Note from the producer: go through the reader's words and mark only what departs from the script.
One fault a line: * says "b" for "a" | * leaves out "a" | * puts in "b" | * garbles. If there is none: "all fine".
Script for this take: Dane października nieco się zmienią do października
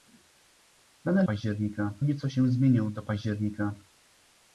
all fine